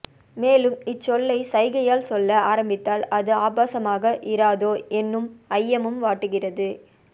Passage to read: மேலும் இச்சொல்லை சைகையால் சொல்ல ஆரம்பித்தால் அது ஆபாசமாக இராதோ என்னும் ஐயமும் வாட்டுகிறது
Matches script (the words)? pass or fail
pass